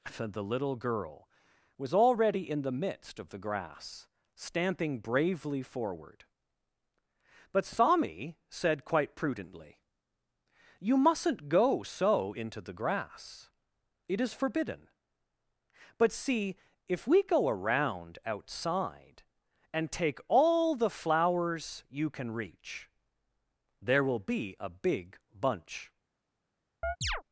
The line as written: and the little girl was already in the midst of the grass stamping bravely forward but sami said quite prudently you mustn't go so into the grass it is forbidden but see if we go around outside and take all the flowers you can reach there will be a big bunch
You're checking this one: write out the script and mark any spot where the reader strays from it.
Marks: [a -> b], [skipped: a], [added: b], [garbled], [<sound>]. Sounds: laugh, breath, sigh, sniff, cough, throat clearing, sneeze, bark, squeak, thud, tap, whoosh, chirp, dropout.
[skipped: and] the little girl was already in the midst of the grass stamping bravely forward but sami said quite prudently you mustn't go so into the grass it is forbidden but see if we go around outside and take all the flowers you can reach there will be a big bunch [chirp]